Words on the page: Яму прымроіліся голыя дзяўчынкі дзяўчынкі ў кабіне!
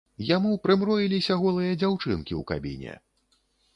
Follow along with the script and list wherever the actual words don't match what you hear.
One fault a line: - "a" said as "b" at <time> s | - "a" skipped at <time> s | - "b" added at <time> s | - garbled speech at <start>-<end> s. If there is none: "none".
- "дзяўчынкі" skipped at 2.3 s